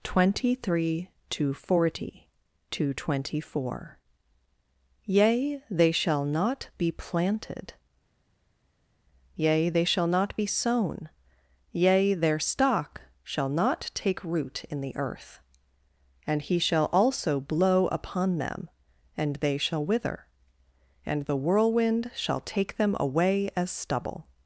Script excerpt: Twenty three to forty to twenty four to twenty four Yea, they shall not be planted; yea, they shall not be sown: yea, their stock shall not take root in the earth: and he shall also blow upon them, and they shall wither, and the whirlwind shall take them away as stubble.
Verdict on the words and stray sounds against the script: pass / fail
fail